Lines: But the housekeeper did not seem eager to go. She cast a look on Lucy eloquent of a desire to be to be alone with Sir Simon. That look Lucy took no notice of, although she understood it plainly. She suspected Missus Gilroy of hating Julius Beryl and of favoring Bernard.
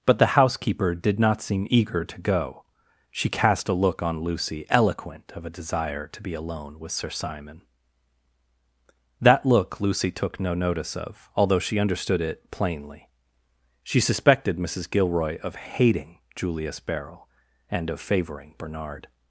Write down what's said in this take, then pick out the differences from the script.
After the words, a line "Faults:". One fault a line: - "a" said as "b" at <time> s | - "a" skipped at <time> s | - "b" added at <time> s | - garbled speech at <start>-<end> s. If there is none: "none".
But the housekeeper did not seem eager to go. She cast a look on Lucy eloquent of a desire to be alone with Sir Simon. That look Lucy took no notice of, although she understood it plainly. She suspected Missus Gilroy of hating Julius Beryl and of favoring Bernard.
Faults:
- "to be" skipped at 6.3 s